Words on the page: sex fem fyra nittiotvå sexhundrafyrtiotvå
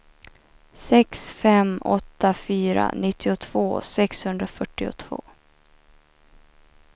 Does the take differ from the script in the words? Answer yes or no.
yes